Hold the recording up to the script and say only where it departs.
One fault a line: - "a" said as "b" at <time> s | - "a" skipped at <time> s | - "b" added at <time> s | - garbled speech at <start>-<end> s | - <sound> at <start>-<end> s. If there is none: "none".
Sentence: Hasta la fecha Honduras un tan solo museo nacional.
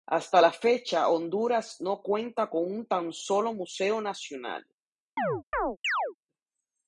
- "no cuenta con" added at 1.8 s
- chirp at 5.2-6.1 s